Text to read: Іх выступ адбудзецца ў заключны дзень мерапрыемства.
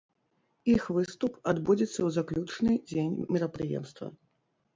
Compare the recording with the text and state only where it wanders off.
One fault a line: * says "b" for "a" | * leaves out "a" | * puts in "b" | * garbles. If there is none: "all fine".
all fine